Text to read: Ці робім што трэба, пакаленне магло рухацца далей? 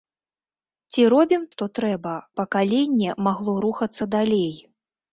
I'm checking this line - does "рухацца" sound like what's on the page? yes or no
yes